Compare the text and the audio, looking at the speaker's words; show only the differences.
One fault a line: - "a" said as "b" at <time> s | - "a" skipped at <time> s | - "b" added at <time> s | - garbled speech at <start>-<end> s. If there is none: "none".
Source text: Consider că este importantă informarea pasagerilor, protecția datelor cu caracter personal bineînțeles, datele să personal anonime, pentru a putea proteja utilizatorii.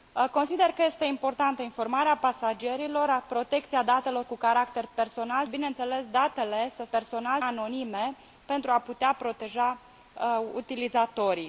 none